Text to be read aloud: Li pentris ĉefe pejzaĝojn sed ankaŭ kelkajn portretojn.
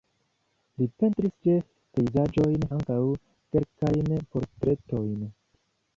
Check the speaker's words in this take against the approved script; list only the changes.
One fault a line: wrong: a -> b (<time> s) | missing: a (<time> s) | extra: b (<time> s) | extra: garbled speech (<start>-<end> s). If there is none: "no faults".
missing: sed (2.6 s)